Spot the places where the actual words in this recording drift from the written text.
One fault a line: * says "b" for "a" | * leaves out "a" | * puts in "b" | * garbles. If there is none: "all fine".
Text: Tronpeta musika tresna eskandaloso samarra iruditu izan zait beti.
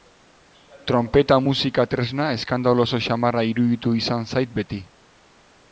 all fine